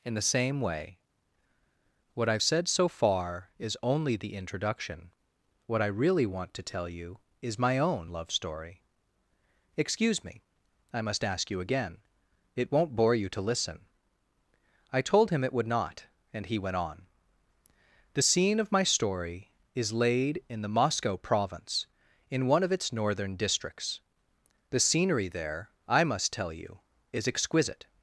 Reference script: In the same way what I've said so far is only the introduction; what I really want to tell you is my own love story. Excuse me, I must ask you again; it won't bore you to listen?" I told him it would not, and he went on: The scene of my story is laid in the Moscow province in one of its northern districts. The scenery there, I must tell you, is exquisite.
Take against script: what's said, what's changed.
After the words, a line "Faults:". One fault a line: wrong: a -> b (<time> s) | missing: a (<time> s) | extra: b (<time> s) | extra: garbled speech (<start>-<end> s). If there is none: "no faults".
In the same way what I've said so far is only the introduction; what I really want to tell you is my own love story. Excuse me, I must ask you again; it won't bore you to listen?" I told him it would not, and he went on: The scene of my story is laid in the Moscow province in one of its northern districts. The scenery there, I must tell you, is exquisite.
Faults:
no faults